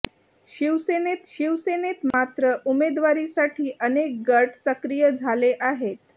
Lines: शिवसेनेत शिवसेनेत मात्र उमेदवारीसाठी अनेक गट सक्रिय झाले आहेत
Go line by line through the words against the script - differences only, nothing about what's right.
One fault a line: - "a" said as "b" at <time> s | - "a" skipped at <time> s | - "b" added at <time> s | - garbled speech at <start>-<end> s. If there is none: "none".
none